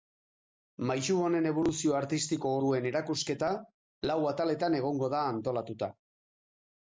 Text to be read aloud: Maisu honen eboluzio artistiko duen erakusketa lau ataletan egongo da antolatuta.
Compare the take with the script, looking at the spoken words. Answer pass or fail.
pass